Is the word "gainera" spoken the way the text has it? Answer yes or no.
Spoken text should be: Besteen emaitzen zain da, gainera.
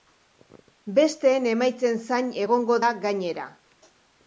yes